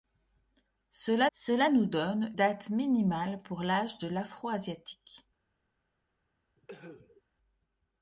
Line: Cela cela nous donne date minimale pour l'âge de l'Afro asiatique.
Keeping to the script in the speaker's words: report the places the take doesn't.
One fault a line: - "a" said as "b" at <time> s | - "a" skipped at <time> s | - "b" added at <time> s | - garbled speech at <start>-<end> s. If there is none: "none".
none